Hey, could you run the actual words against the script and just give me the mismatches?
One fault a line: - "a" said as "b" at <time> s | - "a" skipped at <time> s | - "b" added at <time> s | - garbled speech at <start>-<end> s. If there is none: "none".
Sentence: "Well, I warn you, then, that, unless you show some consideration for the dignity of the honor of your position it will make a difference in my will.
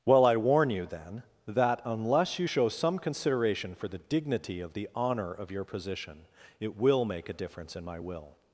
none